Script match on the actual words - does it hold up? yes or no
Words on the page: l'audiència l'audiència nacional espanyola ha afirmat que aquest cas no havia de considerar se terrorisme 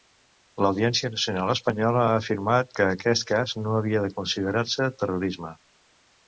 no